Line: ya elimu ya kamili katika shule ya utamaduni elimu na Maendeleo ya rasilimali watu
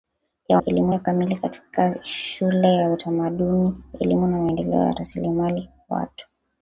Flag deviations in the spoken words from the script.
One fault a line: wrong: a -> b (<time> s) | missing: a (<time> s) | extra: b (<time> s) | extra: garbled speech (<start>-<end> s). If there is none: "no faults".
no faults